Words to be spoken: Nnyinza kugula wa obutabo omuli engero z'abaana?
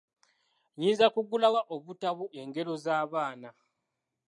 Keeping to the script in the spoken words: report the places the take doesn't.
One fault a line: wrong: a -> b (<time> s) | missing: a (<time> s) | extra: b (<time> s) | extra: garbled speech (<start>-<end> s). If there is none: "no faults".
missing: omuli (2.2 s)